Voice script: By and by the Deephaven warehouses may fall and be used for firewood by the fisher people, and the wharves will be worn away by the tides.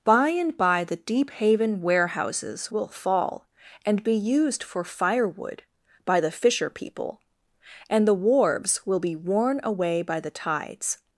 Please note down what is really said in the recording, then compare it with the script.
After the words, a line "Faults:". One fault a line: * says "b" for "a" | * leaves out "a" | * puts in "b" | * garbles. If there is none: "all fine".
By and by the Deephaven warehouses will fall and be used for firewood by the fisher people, and the wharves will be worn away by the tides.
Faults:
* says "will" for "may"